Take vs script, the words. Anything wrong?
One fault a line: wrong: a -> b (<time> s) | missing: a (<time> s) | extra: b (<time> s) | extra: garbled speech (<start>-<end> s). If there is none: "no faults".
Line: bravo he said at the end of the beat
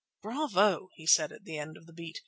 no faults